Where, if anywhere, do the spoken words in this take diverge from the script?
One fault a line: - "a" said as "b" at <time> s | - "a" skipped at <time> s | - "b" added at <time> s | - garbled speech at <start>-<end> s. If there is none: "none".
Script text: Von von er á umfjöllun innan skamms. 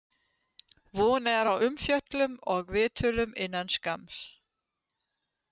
- "von" skipped at 1.2 s
- "og viðtölum" added at 2.6 s